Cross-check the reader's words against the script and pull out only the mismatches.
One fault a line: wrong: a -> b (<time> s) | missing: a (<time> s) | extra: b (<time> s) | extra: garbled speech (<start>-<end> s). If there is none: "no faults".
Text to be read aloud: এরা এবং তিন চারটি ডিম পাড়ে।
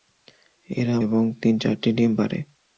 no faults